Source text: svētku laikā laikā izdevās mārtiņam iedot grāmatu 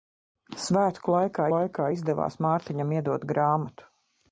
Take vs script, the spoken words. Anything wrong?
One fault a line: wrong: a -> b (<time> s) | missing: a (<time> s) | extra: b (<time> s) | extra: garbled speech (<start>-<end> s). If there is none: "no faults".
no faults